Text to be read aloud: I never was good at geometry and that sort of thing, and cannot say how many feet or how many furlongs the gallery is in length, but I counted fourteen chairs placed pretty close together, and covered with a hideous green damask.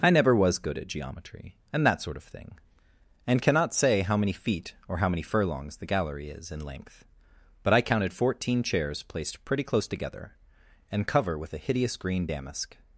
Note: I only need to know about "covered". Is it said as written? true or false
false